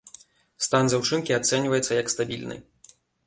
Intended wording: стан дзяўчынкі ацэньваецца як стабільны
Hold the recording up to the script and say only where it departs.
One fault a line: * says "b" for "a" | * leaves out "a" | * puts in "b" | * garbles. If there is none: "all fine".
all fine